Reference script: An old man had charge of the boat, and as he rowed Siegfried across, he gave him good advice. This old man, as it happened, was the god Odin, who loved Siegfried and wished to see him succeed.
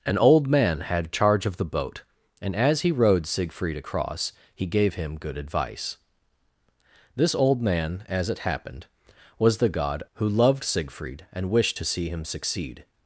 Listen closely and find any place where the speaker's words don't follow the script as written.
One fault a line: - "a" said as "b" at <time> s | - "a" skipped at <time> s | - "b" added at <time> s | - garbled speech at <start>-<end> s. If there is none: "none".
- "Odin" skipped at 10.0 s